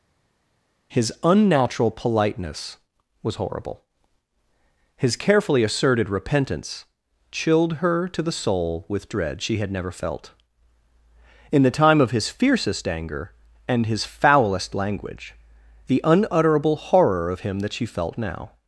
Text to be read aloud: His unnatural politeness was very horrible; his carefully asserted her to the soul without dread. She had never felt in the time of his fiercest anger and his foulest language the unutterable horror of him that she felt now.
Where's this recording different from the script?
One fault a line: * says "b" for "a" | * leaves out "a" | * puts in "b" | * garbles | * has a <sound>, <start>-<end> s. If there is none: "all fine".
* leaves out "very"
* puts in "repentance chilled"
* says "with" for "without"